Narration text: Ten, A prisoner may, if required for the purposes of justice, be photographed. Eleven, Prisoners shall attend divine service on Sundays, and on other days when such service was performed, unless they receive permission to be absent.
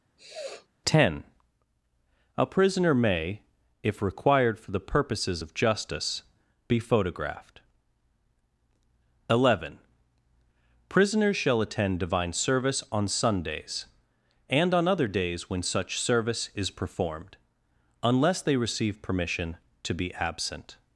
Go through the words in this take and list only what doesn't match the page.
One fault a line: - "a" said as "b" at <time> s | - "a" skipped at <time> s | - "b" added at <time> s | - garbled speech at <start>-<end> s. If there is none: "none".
- "was" said as "is" at 16.5 s